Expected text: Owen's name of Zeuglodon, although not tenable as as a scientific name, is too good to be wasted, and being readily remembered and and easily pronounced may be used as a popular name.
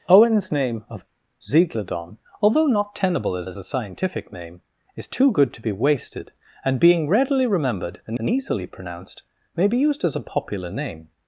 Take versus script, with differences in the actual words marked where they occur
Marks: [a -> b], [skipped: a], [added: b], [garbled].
Owen's name of Zeuglodon, although not tenable as as a scientific name, is too good to be wasted, and being readily remembered and and easily pronounced may be used as a popular name.